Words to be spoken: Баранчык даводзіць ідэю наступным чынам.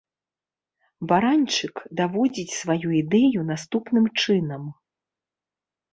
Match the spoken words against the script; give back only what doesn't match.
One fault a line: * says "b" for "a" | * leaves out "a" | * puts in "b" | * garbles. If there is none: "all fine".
* puts in "сваю"